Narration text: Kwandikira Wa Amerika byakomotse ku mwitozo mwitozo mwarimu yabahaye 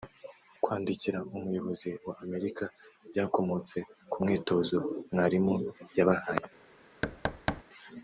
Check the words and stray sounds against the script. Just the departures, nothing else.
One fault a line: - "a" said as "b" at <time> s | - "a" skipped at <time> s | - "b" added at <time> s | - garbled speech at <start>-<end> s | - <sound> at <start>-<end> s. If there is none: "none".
- "Umuyobozi" added at 1.4 s
- "mwitozo" skipped at 4.8 s
- thud at 7.0-7.6 s